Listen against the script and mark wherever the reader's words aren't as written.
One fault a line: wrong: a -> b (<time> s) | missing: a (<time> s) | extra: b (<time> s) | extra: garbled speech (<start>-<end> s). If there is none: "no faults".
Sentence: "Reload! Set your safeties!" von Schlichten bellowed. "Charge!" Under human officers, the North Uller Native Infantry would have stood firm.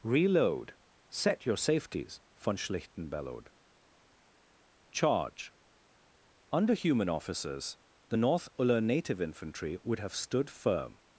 no faults